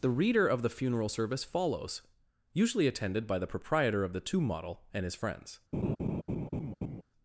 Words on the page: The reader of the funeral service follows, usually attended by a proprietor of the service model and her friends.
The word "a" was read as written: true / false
false